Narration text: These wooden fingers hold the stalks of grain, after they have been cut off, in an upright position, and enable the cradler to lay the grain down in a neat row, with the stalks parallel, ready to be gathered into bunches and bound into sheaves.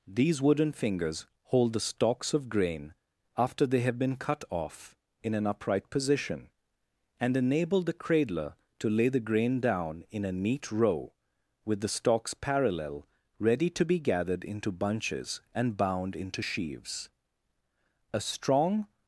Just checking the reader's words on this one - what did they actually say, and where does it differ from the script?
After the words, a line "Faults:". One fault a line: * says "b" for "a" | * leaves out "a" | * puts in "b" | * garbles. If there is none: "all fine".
These wooden fingers hold the stalks of grain, after they have been cut off, in an upright position, and enable the cradler to lay the grain down in a neat row, with the stalks parallel, ready to be gathered into bunches and bound into sheaves. A strong
Faults:
* puts in "A strong"